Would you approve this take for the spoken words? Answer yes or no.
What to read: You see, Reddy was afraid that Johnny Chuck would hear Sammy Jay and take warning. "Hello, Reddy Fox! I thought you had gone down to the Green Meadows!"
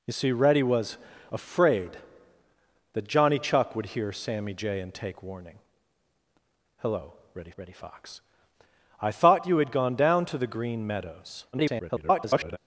no